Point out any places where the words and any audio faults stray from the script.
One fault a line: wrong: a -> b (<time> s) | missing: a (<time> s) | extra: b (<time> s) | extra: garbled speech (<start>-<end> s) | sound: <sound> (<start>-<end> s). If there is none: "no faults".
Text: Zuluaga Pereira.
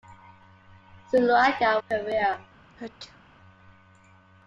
sound: sneeze (2.7-3.2 s)